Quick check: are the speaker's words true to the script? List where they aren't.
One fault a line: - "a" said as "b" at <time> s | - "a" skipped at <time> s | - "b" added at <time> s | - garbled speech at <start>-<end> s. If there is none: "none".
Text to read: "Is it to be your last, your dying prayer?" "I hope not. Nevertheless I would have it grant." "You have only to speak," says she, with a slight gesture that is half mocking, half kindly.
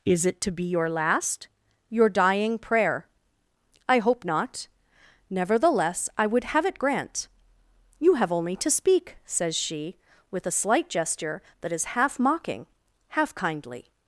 none